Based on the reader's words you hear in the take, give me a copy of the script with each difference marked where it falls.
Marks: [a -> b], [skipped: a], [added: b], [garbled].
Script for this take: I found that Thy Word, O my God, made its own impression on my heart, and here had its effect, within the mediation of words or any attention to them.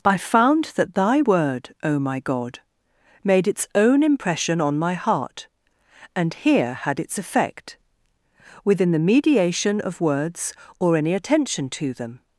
I found that Thy Word, O my God, made its own impression on my heart, and here had its effect, within the mediation of words or any attention to them.